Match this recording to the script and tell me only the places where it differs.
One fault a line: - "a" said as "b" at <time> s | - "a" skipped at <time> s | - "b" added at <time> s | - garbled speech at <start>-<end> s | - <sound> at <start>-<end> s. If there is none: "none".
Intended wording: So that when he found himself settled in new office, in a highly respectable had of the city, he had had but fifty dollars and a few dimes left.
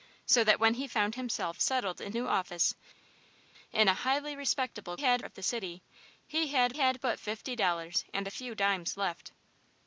none